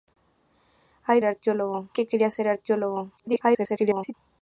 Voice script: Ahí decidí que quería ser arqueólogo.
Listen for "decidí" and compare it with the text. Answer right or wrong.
wrong